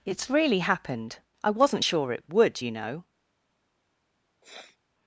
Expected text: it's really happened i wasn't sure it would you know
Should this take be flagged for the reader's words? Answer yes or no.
no